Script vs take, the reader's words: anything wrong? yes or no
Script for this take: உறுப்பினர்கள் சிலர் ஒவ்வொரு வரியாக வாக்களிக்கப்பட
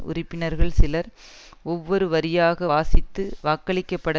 yes